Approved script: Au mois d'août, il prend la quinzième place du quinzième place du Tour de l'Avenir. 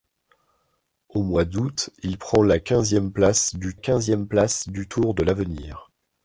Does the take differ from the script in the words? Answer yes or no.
no